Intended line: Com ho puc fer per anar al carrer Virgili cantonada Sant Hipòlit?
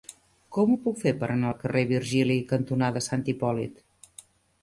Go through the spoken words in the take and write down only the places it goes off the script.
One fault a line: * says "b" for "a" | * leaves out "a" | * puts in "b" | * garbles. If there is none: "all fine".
all fine